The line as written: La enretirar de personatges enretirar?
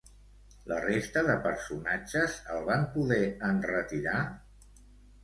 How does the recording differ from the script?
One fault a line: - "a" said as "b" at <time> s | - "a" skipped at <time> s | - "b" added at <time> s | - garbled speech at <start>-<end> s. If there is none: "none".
- "enretirar" said as "resta" at 0.8 s
- "el van poder" added at 2.5 s